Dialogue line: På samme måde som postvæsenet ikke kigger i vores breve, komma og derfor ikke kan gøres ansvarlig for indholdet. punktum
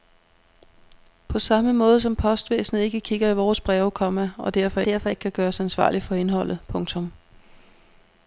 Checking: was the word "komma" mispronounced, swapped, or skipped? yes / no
no